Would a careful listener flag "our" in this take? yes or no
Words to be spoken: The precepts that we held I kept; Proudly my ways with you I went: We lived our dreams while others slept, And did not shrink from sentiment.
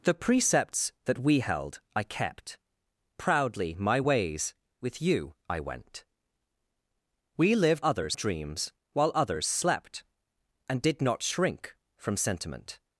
yes